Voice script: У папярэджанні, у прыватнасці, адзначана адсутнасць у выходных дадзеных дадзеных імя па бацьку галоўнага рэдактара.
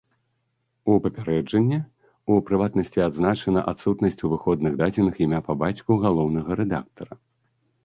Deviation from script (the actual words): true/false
true